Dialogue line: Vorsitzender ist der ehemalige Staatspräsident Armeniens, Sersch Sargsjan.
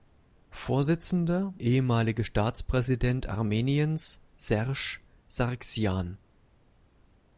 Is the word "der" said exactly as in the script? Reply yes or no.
no